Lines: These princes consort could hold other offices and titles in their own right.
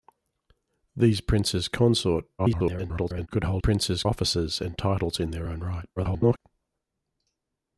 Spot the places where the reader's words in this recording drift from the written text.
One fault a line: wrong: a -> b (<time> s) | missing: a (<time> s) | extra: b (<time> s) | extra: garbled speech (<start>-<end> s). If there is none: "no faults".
extra: garbled speech (2.4-3.3 s)
wrong: other -> princes (3.6 s)
extra: garbled speech (6.0-6.4 s)